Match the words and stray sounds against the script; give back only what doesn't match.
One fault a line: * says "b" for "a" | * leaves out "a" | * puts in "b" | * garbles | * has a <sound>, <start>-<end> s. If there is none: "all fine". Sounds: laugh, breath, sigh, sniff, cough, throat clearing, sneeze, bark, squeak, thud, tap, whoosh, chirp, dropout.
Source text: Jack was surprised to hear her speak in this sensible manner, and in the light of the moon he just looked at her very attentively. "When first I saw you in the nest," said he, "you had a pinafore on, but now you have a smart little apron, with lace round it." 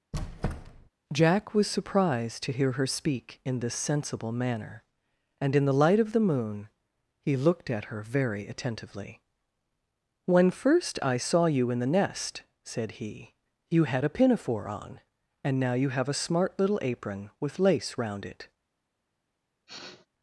* has a squeak, 0.1-0.9 s
* leaves out "just"
* says "and" for "but"
* has a sniff, 19.7-20.1 s